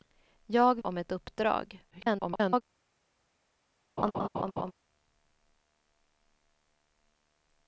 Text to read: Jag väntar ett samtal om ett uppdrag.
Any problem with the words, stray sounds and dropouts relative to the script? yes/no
yes